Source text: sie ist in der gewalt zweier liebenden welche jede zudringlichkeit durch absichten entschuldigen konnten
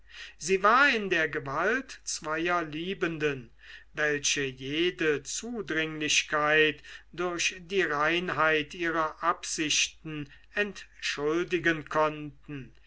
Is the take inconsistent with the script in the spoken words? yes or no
yes